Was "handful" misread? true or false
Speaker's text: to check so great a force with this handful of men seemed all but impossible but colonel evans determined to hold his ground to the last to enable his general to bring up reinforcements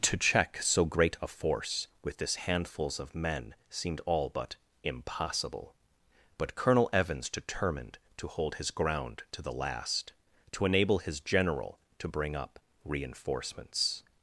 true